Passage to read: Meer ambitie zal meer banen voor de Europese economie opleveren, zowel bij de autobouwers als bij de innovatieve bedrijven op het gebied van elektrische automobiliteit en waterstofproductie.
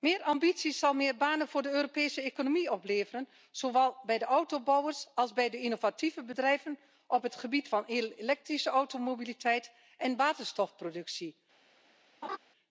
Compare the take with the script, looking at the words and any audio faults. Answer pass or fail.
fail